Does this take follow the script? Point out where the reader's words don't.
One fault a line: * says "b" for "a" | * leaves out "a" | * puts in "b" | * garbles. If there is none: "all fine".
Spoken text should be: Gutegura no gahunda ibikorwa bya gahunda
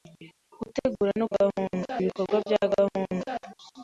all fine